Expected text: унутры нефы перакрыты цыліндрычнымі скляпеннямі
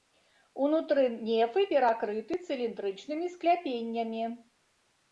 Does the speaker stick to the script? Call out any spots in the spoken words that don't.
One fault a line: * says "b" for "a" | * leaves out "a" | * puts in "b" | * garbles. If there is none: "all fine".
all fine